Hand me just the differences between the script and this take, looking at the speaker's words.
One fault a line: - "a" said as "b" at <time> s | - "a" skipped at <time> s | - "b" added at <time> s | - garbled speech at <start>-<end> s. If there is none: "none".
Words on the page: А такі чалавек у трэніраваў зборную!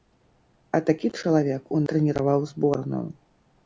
none